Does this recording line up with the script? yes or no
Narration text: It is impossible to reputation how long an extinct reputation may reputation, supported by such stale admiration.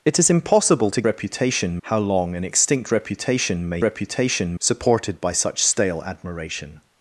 yes